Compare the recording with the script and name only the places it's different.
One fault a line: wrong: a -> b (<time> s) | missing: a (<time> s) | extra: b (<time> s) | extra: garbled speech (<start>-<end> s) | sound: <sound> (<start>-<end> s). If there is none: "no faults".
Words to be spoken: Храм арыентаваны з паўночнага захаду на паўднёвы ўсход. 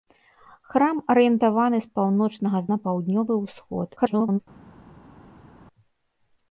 missing: захаду (2.6 s)
extra: garbled speech (4.0-4.4 s)